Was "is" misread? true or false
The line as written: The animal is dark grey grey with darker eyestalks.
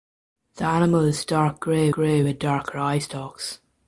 false